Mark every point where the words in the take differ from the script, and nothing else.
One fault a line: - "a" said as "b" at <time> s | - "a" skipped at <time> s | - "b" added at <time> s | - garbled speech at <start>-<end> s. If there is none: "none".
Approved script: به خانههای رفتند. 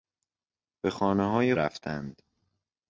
none